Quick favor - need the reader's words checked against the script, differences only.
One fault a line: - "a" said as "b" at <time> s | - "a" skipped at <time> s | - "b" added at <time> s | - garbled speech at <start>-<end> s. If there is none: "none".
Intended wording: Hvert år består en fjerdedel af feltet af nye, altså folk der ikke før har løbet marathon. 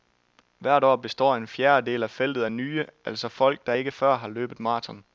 none